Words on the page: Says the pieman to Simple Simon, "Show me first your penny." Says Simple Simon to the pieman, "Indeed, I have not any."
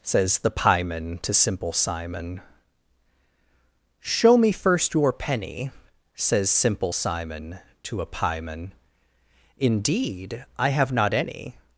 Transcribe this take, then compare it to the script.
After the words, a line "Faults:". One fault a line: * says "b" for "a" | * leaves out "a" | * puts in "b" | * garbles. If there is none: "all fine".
Says the pieman to Simple Simon, "Show me first your penny." Says Simple Simon to a pieman, "Indeed, I have not any."
Faults:
* says "a" for "the"